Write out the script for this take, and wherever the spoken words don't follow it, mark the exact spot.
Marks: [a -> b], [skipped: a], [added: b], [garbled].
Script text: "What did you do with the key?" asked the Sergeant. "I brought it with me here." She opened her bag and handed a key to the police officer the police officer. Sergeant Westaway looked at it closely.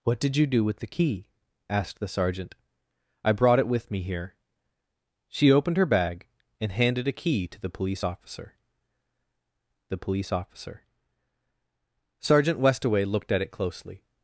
"What did you do with the key?" asked the Sergeant. "I brought it with me here." She opened her bag and handed a key to the police officer the police officer. Sergeant Westaway looked at it closely.